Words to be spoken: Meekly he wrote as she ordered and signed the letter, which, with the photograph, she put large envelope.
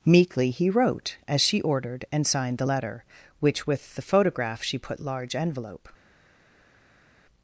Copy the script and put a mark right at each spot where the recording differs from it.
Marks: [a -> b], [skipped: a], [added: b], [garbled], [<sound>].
Meekly he wrote as she ordered and signed the letter, which, with the photograph, she put large envelope.